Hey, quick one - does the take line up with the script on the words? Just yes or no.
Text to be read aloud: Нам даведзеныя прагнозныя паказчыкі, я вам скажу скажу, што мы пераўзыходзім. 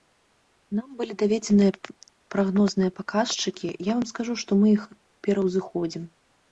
no